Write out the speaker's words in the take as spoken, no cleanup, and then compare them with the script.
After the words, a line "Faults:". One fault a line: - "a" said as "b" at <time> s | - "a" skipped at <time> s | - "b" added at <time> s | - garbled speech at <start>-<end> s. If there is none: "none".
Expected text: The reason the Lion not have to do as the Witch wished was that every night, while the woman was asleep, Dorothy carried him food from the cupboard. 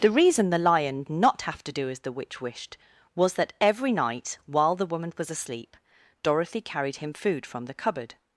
The reason the Lion not have to do as the Witch wished was that every night, while the woman was asleep, Dorothy carried him food from the cupboard.
Faults:
none